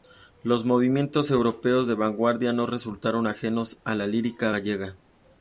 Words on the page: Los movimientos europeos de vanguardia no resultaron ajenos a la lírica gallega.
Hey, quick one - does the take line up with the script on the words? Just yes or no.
yes